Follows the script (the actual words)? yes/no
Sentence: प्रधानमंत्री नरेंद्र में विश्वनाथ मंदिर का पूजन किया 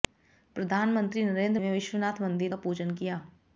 yes